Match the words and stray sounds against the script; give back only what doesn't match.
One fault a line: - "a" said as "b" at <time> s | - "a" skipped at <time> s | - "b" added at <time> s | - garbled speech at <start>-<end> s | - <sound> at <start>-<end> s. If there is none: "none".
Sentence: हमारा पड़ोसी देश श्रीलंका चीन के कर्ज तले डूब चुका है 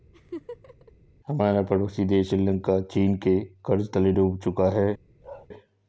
- laugh at 0.1-0.9 s
- bark at 5.2-5.5 s